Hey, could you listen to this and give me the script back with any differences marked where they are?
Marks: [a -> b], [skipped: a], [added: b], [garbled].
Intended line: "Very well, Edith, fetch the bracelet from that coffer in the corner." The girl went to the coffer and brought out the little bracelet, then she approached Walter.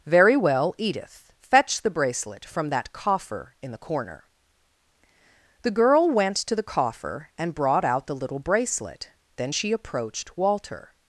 "Very well, Edith, fetch the bracelet from that coffer in the corner." The girl went to the coffer and brought out the little bracelet, then she approached Walter.